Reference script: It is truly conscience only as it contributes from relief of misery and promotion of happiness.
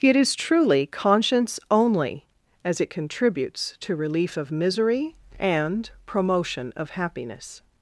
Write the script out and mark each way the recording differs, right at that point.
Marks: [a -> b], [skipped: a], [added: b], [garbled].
It is truly conscience only as it contributes [from -> to] relief of misery and promotion of happiness.